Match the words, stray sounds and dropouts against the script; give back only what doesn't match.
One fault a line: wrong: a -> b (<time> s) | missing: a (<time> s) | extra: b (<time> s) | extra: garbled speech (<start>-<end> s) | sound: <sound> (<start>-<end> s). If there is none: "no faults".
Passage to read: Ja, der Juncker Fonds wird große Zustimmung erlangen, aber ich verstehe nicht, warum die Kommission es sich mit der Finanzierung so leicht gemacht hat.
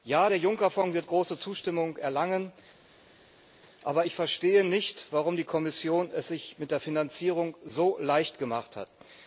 no faults